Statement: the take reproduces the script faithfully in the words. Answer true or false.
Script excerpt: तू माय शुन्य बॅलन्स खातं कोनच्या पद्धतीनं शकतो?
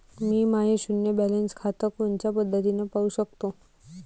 false